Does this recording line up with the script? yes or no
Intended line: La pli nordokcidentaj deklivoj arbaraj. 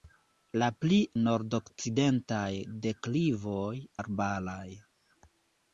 yes